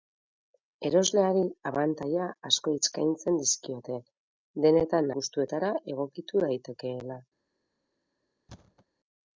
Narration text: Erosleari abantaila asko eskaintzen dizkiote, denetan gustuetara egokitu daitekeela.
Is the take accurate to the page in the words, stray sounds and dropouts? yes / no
no